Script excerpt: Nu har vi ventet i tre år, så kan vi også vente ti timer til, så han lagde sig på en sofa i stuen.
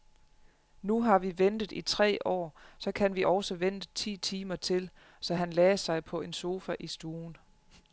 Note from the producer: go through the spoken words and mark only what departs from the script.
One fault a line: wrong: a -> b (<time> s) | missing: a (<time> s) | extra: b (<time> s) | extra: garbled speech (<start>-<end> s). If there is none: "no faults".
no faults